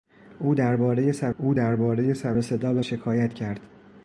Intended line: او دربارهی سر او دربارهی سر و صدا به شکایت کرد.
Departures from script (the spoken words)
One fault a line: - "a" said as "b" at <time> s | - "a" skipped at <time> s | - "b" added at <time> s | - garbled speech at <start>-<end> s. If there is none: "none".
none